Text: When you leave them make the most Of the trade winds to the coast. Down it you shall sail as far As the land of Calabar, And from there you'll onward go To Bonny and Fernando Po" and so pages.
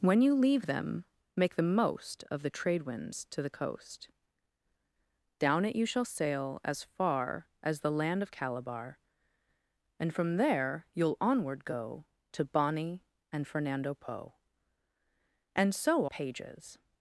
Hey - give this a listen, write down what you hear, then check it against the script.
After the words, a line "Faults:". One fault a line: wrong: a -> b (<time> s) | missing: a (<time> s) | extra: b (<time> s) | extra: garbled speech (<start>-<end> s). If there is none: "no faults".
When you leave them make the most Of the trade winds to the coast. Down it you shall sail as far As the land of Calabar, And from there you'll onward go To Bonny and Fernando Po" and so pages.
Faults:
no faults